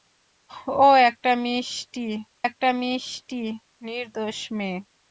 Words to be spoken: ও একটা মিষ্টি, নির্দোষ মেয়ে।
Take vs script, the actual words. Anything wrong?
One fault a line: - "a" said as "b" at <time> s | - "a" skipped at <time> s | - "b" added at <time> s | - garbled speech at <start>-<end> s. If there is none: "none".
- "একটা মিষ্টি" added at 2.5 s